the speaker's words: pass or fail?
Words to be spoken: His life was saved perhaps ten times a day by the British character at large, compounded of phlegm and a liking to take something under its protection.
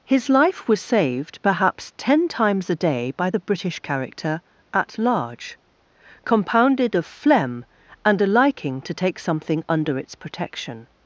pass